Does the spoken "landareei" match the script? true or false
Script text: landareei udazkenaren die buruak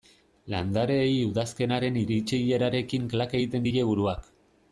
true